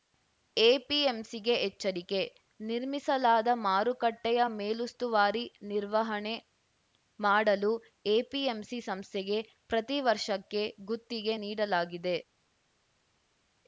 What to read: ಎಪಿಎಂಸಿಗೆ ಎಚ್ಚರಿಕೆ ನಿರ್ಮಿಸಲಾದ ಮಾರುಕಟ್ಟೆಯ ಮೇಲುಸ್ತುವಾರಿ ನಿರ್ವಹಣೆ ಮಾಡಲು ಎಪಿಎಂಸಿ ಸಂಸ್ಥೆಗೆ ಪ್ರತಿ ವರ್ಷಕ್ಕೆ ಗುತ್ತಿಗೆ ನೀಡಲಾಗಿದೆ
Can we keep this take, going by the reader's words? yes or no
yes